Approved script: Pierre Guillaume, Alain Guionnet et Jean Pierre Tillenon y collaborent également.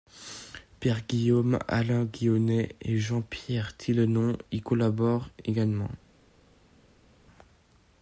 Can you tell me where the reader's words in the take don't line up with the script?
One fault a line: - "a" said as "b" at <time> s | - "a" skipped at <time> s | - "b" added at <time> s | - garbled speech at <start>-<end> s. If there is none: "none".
none